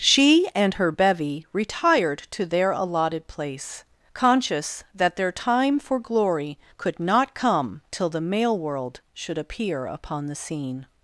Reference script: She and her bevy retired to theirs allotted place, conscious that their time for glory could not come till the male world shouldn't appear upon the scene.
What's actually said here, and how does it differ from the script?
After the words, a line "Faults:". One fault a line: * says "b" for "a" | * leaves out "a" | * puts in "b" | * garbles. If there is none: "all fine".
She and her bevy retired to their allotted place, conscious that their time for glory could not come till the male world should appear upon the scene.
Faults:
* says "their" for "theirs"
* says "should" for "shouldn't"